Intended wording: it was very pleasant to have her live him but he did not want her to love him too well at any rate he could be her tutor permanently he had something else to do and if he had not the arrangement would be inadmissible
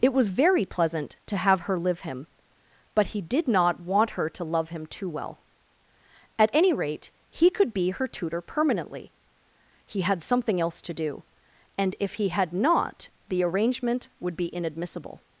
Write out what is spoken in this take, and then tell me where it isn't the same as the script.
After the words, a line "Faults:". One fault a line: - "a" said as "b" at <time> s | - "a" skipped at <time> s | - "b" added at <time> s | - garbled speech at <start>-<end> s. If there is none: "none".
it was very pleasant to have her live him but he did not want her to love him too well at any rate he could be her tutor permanently he had something else to do and if he had not the arrangement would be inadmissible
Faults:
none